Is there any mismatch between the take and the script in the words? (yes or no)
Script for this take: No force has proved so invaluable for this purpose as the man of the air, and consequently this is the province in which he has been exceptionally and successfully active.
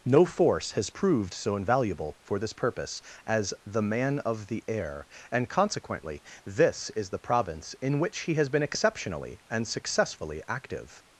no